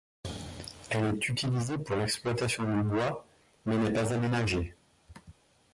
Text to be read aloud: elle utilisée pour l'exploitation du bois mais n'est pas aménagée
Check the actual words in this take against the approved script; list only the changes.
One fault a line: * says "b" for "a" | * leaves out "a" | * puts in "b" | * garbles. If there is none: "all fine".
* puts in "est"